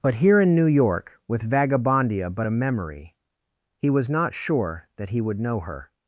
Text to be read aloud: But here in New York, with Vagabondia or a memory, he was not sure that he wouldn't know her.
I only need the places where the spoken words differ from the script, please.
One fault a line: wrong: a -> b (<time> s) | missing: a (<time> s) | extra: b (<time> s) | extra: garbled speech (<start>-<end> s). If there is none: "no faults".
wrong: or -> but (2.3 s)
wrong: wouldn't -> would (5.2 s)